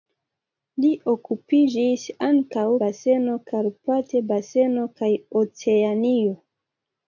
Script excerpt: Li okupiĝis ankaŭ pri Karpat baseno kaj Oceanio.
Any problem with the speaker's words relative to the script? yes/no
yes